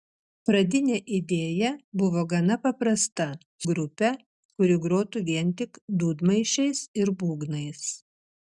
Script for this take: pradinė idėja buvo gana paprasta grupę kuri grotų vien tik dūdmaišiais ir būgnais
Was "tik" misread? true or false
false